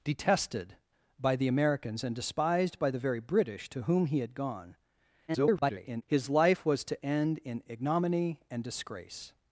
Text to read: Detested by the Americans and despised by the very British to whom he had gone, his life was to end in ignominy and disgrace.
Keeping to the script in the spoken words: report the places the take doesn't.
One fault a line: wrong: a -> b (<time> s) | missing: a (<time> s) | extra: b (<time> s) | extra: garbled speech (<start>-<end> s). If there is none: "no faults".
extra: garbled speech (5.3-6.0 s)